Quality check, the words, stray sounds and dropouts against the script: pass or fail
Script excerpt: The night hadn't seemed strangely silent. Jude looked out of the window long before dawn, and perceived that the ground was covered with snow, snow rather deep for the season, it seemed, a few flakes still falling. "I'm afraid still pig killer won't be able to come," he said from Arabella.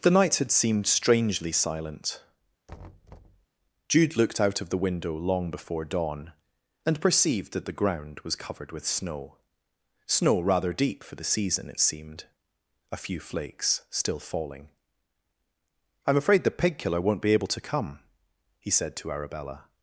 fail